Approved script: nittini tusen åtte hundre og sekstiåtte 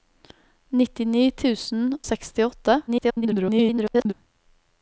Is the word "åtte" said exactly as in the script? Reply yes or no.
no